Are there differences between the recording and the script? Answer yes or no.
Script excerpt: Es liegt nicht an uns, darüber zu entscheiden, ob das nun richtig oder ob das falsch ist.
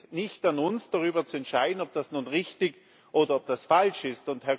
no